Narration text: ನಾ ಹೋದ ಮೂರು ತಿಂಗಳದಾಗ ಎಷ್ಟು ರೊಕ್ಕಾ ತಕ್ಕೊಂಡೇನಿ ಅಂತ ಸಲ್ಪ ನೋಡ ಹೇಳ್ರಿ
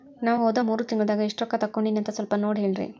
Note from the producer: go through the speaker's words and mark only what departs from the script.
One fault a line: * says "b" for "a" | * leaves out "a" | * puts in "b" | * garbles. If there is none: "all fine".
all fine